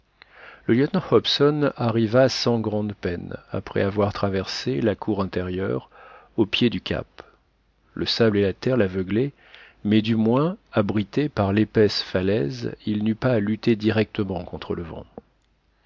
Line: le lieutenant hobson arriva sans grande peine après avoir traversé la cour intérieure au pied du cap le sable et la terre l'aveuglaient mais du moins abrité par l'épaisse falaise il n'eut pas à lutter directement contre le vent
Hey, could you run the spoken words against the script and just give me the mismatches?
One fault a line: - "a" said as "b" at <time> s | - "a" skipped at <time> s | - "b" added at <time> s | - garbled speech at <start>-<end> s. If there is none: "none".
none